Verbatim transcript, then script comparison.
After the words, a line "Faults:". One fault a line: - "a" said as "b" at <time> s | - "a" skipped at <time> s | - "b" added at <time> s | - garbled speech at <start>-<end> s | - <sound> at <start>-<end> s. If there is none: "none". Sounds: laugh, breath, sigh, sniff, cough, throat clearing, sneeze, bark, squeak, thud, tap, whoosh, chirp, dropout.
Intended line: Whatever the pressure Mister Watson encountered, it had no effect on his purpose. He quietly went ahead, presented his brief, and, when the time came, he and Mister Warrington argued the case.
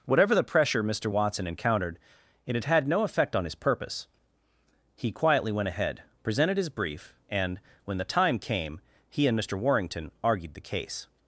Whatever the pressure Mister Watson encountered, it had had no effect on his purpose. He quietly went ahead, presented his brief, and, when the time came, he and Mister Warrington argued the case.
Faults:
- "had" added at 2.6 s